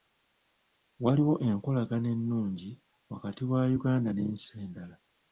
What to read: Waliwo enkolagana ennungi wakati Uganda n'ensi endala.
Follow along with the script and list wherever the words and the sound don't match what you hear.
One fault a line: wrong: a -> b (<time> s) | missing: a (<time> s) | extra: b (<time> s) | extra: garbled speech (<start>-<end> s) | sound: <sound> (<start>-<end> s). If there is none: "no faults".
extra: wa (3.5 s)